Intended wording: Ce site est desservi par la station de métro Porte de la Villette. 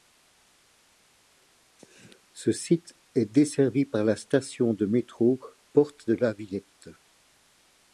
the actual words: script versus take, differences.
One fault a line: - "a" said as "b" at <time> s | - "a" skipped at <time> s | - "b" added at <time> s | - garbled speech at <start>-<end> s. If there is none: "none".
none